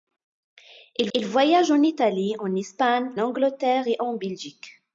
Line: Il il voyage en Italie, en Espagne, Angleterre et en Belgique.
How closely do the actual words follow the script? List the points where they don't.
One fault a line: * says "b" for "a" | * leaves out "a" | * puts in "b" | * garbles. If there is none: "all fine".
all fine